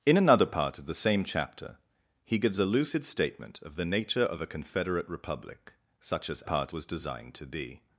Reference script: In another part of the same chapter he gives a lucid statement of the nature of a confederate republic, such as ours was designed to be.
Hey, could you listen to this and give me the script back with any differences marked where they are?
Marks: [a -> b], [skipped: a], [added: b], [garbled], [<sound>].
In another part of the same chapter he gives a lucid statement of the nature of a confederate republic, such as [ours -> part] was designed to be.